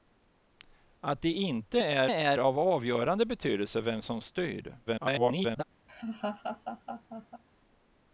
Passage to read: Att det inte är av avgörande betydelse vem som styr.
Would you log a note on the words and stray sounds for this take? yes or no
yes